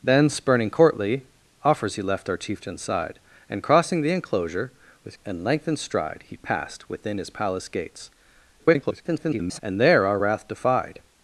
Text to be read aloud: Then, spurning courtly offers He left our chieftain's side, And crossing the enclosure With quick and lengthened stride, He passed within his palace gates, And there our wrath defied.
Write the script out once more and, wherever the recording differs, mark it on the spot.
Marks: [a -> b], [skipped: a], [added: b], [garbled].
Then, spurning courtly offers He left our chieftain's side, And crossing the enclosure With [skipped: quick] and lengthened stride, He passed within his palace gates, [garbled] And there our wrath defied.